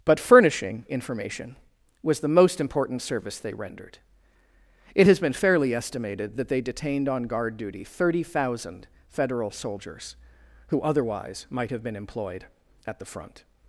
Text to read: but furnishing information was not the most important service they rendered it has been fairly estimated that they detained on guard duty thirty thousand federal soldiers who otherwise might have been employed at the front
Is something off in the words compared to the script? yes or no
yes